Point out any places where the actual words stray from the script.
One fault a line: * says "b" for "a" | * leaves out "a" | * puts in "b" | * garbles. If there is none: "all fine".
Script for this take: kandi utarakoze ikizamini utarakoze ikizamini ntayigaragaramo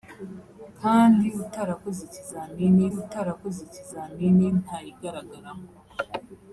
all fine